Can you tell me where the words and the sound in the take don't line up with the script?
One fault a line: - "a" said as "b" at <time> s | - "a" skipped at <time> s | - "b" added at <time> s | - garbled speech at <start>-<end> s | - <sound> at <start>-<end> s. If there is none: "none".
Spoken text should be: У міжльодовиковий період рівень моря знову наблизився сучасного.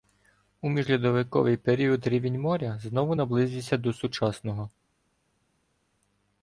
- "до" added at 3.8 s